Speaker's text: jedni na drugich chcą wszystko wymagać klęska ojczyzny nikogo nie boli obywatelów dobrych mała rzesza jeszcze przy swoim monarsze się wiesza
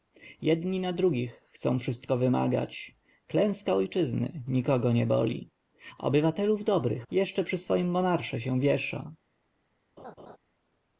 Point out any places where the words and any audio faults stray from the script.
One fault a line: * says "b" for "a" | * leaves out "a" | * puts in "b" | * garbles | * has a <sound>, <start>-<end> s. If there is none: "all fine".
* leaves out "mała rzesza"
* has a laugh, 10.0-10.4 s